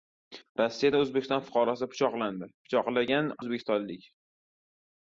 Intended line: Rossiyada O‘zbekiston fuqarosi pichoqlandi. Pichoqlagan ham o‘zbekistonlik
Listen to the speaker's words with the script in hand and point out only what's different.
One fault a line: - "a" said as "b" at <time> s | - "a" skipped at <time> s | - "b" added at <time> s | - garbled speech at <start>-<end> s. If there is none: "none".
- "ham" skipped at 3.3 s